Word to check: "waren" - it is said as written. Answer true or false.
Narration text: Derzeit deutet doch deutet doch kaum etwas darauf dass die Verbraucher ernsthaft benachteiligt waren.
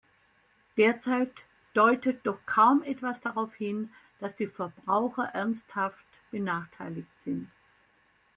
false